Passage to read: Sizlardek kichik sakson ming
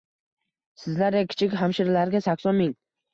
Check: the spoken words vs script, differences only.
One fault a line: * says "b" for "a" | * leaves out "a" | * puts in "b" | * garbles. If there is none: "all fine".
* puts in "hamshiralarga"